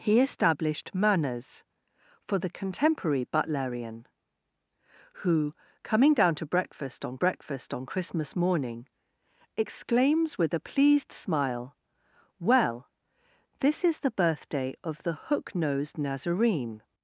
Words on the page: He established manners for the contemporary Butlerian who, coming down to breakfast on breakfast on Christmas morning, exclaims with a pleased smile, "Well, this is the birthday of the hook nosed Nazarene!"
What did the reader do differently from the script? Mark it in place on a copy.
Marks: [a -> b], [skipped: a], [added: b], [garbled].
He established manners for the contemporary Butlerian who, coming down to breakfast on breakfast on Christmas morning, exclaims with a pleased smile, "Well, this is the birthday of the hook nosed Nazarene!"